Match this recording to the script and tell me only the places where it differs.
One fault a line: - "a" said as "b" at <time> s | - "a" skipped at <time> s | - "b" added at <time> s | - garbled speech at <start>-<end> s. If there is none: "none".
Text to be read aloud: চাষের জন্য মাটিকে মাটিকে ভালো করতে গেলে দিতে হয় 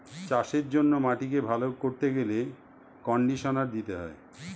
- "মাটিকে" skipped at 1.4 s
- "কন্ডিশনার" added at 3.0 s